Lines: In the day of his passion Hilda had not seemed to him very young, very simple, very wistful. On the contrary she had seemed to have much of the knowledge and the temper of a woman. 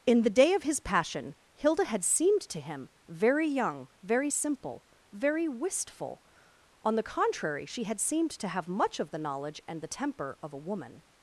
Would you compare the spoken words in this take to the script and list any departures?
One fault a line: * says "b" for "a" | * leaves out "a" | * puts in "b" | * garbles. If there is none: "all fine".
* leaves out "not"